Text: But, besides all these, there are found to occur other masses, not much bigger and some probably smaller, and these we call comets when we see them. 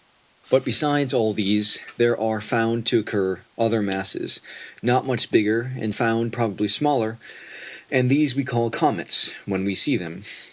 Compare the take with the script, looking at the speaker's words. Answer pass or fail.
fail